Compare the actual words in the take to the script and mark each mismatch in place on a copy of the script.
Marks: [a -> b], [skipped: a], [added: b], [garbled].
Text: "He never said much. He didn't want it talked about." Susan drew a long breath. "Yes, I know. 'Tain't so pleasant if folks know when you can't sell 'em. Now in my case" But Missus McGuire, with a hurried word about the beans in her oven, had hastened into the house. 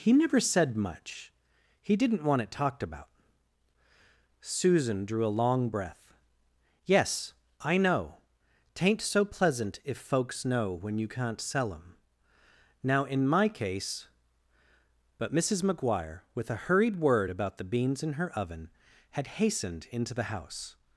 "He never said much. He didn't want it talked about." Susan drew a long breath. "Yes, I know. 'Tain't so pleasant if folks know when you can't sell 'em. Now in my case" But Missus McGuire, with a hurried word about the beans in her oven, had hastened into the house.